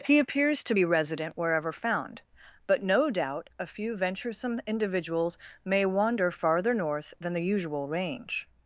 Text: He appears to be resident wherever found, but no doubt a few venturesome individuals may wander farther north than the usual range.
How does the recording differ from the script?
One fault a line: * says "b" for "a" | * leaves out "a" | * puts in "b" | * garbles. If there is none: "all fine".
all fine